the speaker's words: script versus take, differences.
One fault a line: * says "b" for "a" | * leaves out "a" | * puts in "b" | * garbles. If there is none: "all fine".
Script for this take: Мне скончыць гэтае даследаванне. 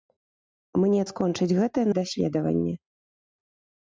all fine